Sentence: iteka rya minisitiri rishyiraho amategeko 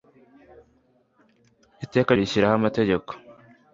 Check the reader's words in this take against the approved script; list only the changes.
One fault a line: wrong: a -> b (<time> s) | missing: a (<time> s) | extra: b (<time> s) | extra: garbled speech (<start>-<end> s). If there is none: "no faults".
missing: rya minisitiri (2.1 s)